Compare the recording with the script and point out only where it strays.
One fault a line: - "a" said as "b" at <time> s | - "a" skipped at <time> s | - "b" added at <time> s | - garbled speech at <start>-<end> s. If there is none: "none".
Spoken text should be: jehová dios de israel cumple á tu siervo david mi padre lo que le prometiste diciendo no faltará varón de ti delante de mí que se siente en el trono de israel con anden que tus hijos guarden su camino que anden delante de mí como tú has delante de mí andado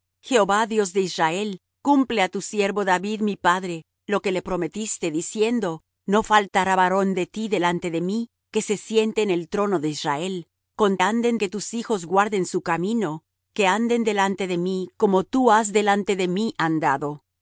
none